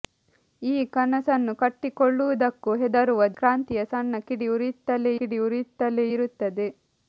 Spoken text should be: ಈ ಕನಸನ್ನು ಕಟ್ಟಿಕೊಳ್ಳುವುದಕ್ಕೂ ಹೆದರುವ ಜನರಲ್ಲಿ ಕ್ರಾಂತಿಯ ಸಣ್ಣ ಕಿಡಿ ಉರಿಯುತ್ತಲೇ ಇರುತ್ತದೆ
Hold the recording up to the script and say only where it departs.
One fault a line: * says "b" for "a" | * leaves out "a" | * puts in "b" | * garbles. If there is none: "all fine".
* leaves out "ಜನರಲ್ಲಿ"
* puts in "ಕಿಡಿ ಉರಿಯುತ್ತಲೇ"